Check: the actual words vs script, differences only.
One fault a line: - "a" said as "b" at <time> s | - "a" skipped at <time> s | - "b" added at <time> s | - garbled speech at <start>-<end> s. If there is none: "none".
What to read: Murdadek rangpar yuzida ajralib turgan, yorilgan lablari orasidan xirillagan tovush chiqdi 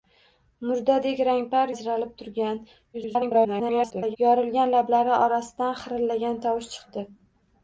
- "yuzida" skipped at 1.7 s
- garbled speech at 2.9-4.2 s